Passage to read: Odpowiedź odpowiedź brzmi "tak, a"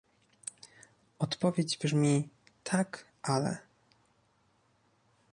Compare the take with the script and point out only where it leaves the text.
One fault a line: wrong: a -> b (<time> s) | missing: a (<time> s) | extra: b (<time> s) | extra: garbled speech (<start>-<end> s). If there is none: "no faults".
missing: odpowiedź (1.8 s)
wrong: a -> ale (3.2 s)